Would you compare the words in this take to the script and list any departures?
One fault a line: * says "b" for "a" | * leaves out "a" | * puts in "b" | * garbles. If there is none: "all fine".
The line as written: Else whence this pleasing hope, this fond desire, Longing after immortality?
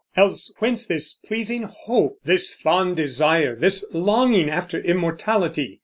* puts in "This"